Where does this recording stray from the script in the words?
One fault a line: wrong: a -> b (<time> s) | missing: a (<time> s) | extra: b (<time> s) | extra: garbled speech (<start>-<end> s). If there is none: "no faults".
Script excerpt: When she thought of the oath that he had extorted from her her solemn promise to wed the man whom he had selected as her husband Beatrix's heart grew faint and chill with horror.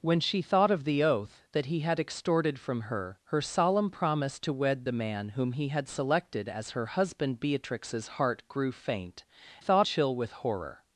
wrong: and -> thought (9.6 s)